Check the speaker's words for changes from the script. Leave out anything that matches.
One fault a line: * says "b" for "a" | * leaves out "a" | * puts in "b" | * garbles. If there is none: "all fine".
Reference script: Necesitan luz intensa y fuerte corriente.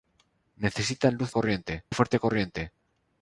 * says "corriente" for "intensa"